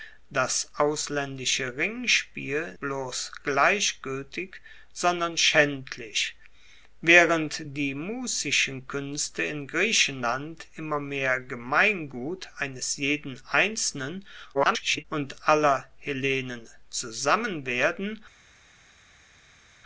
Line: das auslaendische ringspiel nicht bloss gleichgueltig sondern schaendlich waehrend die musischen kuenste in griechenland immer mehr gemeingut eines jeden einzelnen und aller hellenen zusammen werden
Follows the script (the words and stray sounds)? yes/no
no